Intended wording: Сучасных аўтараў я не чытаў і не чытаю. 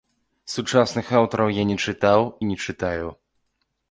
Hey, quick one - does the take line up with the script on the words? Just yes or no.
yes